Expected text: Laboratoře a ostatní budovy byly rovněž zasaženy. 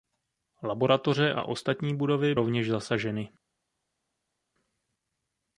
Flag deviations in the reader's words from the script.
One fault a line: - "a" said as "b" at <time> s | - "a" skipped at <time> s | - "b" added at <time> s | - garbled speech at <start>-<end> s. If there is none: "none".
- "byly" skipped at 2.4 s